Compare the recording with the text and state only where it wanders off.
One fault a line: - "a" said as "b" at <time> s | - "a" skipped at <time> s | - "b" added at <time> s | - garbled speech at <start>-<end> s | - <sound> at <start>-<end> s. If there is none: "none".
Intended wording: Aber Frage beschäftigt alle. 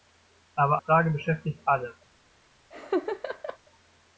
- laugh at 2.7-3.6 s